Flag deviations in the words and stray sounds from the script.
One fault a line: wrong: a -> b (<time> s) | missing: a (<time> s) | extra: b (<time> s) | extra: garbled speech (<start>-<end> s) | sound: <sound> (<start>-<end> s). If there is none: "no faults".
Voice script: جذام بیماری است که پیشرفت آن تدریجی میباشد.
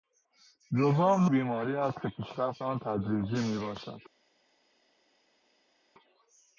no faults